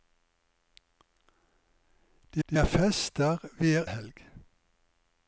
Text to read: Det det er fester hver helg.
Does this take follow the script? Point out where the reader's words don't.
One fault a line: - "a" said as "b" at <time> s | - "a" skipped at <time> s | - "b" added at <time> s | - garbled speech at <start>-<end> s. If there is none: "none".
none